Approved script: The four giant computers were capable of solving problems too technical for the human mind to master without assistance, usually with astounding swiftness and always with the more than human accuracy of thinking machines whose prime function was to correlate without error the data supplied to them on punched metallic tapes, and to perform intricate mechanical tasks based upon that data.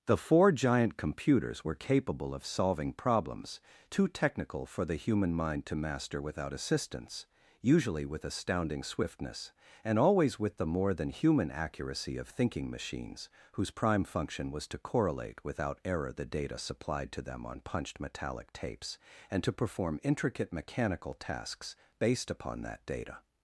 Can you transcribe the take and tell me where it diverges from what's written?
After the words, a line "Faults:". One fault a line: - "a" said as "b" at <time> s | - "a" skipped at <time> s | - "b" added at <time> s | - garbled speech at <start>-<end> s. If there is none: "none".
The four giant computers were capable of solving problems too technical for the human mind to master without assistance, usually with astounding swiftness and always with the more than human accuracy of thinking machines whose prime function was to correlate without error the data supplied to them on punched metallic tapes, and to perform intricate mechanical tasks based upon that data.
Faults:
none